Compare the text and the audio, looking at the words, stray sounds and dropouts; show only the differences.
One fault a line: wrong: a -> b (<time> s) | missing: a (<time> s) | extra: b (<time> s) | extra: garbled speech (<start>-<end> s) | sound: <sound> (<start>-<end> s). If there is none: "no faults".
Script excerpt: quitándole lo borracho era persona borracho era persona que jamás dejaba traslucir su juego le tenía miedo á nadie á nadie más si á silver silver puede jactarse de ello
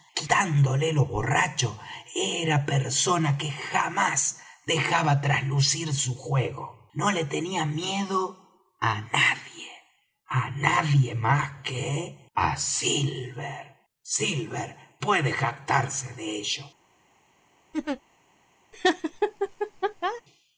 missing: borracho era persona (3.4 s)
extra: no (6.9 s)
wrong: si -> que (11.6 s)
sound: laugh (17.7-18.0 s)
sound: laugh (18.7-20.2 s)